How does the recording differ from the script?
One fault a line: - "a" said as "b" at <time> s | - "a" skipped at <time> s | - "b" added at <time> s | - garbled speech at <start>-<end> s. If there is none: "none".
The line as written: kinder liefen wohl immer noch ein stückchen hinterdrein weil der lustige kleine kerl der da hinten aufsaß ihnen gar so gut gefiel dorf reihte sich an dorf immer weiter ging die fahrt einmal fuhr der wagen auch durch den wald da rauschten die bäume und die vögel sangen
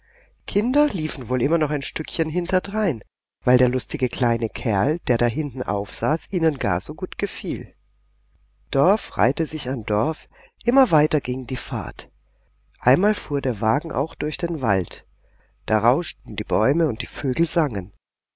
none